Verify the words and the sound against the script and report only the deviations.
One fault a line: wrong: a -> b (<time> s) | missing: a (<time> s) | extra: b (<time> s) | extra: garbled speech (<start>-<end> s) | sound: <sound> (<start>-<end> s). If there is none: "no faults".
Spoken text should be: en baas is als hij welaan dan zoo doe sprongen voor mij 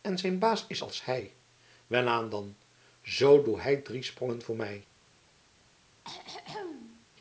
extra: zijn (0.2 s)
extra: hij drie (3.6 s)
sound: throat clearing (6.0-7.1 s)